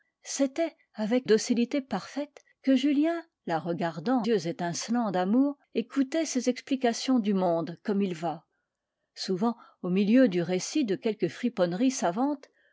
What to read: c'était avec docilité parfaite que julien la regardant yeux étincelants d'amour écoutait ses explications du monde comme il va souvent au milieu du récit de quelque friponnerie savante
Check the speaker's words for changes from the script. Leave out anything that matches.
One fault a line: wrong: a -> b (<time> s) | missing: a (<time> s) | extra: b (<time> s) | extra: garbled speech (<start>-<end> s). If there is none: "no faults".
no faults